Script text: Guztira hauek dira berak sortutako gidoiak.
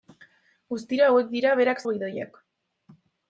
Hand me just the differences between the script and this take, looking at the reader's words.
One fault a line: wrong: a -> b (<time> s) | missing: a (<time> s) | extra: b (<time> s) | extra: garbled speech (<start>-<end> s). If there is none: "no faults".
missing: sortutako (1.8 s)